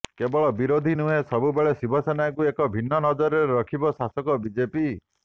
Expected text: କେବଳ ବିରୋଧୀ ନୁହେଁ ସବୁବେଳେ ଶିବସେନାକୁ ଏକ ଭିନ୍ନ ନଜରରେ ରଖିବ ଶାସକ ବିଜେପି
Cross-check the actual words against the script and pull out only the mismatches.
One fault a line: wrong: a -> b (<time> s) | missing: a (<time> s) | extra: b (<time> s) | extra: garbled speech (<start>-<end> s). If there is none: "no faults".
no faults